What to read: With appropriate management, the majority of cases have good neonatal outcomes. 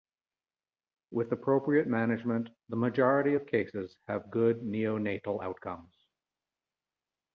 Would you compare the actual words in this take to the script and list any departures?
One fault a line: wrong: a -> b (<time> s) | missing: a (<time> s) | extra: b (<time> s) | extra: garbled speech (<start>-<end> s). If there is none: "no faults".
no faults